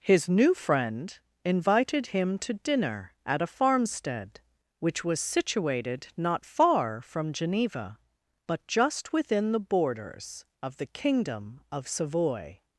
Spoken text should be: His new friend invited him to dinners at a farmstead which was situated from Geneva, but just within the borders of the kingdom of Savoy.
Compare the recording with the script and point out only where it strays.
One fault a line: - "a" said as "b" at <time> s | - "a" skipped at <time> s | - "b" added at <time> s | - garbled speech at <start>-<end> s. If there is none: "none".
- "dinners" said as "dinner" at 2.5 s
- "not far" added at 6.2 s